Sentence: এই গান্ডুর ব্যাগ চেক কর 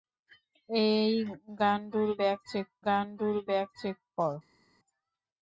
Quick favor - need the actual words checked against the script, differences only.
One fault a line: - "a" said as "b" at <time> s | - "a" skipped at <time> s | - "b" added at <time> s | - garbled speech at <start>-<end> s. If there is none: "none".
- "গান্ডুর ব্যাগ চেক" added at 2.8 s